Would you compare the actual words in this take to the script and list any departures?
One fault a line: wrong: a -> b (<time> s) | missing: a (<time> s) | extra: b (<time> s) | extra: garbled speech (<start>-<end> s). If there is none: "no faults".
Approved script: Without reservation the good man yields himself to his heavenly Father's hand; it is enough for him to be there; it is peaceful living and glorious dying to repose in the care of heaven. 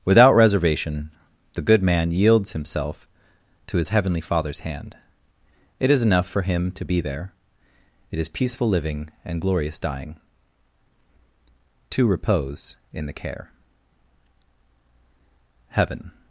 missing: of (13.5 s)